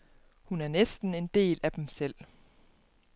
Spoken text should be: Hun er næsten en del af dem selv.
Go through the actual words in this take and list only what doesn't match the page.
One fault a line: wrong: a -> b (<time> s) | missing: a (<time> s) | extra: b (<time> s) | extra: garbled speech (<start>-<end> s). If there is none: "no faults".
no faults